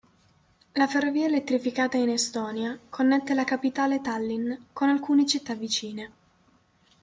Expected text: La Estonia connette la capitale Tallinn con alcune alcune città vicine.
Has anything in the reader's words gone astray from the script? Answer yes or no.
yes